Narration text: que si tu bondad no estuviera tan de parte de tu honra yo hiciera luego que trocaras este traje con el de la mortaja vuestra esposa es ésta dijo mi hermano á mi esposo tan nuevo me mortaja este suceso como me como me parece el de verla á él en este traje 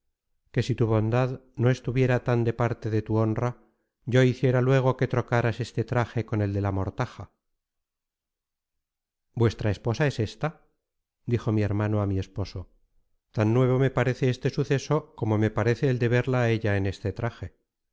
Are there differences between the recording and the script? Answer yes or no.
yes